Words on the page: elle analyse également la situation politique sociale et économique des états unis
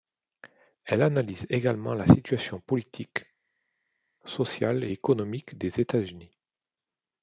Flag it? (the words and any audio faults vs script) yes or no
no